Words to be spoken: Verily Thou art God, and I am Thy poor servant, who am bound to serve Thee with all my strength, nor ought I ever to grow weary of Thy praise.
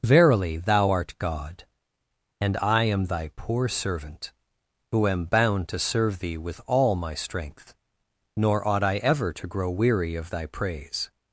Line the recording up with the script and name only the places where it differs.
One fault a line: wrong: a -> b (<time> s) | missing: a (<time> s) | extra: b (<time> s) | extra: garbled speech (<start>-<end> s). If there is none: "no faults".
no faults